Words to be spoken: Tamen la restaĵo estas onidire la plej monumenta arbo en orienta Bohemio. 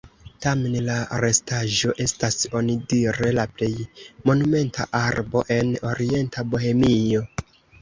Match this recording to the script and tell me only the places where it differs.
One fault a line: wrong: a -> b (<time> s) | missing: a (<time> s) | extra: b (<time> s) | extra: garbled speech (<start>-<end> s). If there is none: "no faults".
no faults